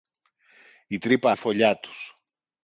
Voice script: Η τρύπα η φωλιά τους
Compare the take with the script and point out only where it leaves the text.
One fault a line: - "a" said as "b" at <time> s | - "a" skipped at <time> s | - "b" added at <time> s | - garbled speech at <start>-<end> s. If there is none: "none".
none